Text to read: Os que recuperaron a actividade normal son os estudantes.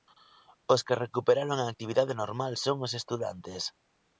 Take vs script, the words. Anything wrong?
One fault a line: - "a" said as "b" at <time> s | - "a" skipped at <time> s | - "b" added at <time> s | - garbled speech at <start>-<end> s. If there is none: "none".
none